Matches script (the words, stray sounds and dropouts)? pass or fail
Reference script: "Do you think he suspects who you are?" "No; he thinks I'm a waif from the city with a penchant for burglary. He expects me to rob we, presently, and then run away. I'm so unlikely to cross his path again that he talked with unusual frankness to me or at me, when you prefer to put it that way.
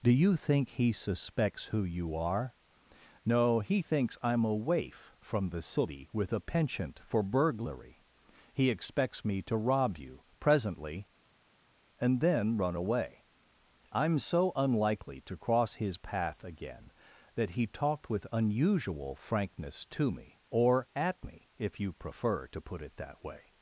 fail